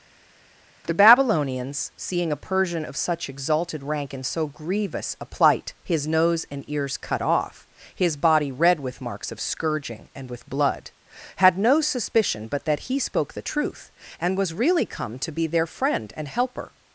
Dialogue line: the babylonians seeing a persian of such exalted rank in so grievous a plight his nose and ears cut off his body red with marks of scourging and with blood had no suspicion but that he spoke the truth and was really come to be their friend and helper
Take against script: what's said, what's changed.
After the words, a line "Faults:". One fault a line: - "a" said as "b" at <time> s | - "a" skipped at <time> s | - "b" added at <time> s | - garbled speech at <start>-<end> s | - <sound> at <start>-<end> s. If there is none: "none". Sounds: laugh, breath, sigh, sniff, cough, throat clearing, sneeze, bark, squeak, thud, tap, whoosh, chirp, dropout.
the babylonians seeing a persian of such exalted rank in so grievous a plight his nose and ears cut off his body red with marks of scourging and with blood had no suspicion but that he spoke the truth and was really come to be their friend and helper
Faults:
none